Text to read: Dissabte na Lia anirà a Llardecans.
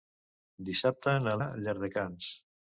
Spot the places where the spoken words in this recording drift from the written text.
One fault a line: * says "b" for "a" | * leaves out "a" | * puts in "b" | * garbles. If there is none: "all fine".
* leaves out "Lia anirà"